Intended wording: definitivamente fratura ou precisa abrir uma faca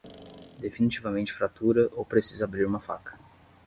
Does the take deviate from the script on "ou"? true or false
false